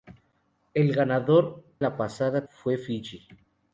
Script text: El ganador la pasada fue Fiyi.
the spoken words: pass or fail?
pass